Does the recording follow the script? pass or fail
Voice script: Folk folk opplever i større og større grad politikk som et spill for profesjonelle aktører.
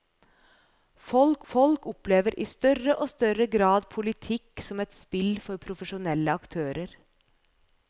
pass